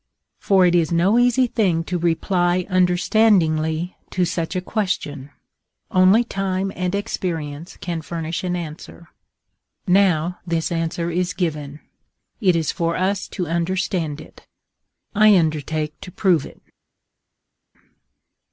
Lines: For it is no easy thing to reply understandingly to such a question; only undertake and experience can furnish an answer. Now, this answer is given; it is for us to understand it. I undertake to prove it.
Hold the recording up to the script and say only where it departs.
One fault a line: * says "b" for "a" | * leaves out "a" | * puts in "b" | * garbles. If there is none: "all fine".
* says "time" for "undertake"